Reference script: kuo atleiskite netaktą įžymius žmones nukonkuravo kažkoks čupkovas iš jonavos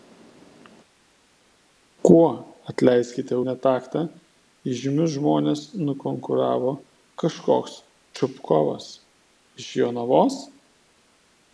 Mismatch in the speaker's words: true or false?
false